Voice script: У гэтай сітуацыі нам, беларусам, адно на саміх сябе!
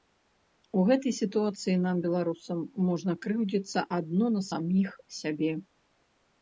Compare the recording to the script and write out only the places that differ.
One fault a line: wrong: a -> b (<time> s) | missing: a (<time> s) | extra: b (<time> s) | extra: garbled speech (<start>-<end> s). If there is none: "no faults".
extra: можна крыўдзіцца (2.9 s)